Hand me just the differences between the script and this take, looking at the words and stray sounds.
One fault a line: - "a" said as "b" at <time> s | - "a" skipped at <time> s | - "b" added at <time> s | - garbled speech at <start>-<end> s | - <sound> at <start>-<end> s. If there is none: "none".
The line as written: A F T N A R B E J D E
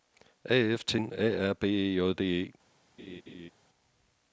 - laugh at 3.0-3.5 s